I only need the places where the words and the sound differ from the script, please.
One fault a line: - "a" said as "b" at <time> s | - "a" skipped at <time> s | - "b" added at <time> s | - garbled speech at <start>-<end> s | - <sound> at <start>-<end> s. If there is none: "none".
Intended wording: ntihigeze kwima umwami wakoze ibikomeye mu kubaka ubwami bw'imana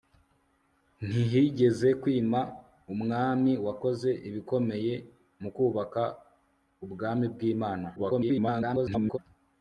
- garbled speech at 8.0-9.2 s